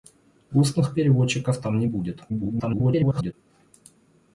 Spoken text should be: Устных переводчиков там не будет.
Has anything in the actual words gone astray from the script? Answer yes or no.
yes